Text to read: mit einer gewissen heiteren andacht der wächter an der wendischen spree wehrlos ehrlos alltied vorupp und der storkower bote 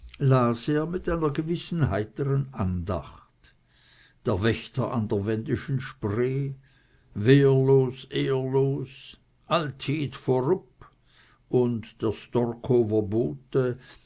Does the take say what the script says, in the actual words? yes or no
yes